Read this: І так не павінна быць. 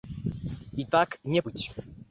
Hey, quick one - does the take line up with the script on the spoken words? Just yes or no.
no